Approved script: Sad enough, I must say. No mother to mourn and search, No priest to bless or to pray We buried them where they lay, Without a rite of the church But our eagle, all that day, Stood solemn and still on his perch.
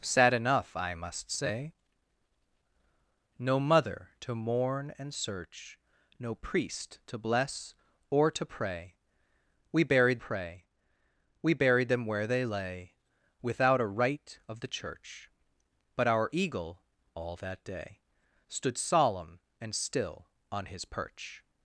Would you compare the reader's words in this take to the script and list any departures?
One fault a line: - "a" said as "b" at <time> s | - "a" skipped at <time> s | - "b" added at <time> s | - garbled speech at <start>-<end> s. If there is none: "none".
- "pray We buried" added at 10.1 s